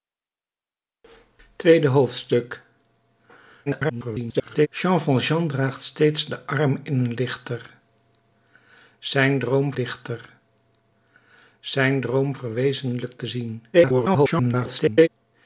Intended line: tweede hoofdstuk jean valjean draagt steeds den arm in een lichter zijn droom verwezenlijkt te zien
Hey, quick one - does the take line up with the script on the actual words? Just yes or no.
no